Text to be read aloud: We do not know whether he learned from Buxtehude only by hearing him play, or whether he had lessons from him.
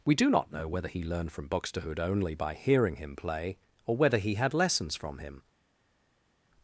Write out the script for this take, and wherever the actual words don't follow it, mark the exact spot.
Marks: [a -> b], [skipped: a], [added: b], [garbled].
We do not know whether he learned from Buxtehude only by hearing him play, or whether he had lessons from him.